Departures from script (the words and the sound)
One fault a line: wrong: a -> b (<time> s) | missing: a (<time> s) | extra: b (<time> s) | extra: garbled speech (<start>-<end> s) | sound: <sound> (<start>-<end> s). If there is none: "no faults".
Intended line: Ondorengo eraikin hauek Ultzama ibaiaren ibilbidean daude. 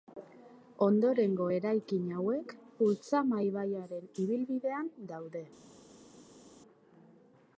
no faults